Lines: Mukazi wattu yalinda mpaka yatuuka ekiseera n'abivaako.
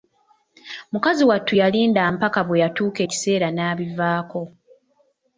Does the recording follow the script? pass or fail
fail